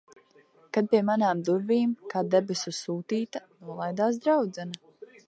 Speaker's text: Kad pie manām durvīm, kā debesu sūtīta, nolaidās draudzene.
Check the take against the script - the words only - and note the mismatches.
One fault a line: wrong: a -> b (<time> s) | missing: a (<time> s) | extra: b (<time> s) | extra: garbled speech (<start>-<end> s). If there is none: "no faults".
no faults